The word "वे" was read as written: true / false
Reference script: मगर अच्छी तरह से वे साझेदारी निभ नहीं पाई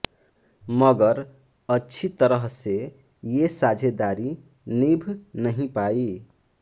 false